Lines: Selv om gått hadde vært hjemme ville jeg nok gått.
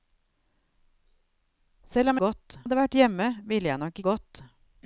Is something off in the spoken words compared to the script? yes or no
no